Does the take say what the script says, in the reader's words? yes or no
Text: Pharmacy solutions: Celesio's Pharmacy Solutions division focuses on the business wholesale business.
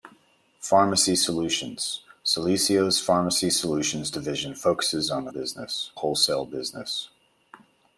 yes